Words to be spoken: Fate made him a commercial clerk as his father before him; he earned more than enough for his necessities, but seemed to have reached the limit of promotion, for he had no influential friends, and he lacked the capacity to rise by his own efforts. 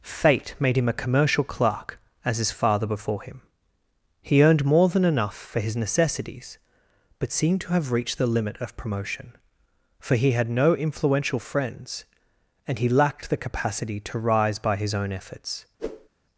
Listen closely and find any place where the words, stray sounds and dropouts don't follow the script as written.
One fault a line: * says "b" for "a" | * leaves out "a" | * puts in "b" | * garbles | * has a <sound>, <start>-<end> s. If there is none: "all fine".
* has a whoosh, 15.8-16.1 s